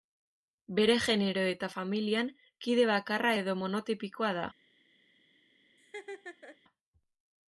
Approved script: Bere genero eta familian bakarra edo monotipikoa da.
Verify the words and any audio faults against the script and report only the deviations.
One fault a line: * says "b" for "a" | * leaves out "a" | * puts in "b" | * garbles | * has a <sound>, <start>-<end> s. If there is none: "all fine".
* puts in "kide"
* has a laugh, 5.8-6.6 s